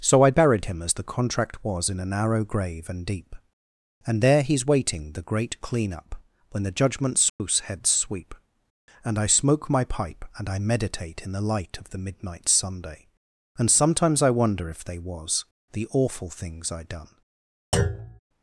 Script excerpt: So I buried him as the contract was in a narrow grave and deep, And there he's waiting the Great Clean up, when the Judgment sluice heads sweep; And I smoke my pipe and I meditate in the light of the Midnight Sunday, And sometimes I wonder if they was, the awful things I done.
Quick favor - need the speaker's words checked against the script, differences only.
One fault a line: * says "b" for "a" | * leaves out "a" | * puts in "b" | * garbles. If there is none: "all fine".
all fine